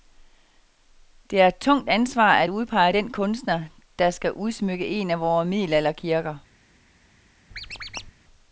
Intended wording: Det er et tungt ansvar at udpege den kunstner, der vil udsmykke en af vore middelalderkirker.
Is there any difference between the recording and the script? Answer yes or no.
yes